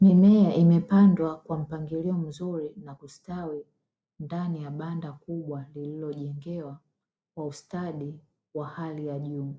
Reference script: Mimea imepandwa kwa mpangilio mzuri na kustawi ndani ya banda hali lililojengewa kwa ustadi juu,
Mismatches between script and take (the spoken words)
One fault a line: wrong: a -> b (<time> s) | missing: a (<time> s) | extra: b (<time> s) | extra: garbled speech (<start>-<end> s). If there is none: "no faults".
wrong: hali -> kubwa (5.1 s)
extra: wa hali ya (8.5 s)